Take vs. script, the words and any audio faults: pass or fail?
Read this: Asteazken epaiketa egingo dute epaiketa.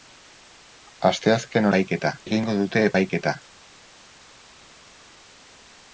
pass